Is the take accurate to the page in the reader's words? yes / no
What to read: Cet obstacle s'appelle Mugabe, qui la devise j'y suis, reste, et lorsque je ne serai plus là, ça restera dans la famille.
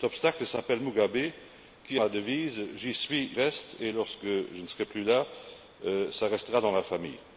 yes